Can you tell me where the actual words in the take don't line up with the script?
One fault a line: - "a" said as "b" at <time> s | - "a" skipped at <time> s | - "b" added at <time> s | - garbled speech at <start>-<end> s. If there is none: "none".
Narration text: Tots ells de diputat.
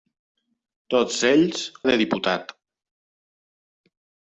none